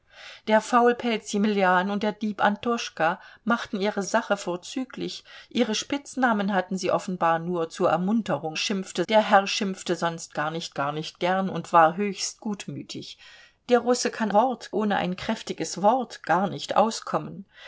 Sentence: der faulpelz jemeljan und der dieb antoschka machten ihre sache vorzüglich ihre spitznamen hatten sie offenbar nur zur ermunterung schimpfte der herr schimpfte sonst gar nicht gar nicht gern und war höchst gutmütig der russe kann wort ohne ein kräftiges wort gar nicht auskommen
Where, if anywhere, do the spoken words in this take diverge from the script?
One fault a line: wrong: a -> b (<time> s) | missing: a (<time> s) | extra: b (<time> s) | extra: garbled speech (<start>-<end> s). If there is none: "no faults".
no faults